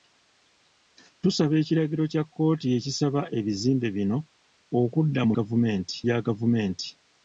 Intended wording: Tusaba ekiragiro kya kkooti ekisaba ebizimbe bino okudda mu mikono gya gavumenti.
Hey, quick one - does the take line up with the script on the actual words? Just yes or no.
no